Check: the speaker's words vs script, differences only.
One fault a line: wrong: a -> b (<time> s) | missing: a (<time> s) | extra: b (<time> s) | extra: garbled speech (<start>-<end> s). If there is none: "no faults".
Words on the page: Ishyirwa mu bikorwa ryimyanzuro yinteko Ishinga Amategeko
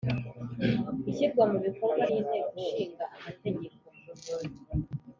missing: ryimyanzuro (2.0 s)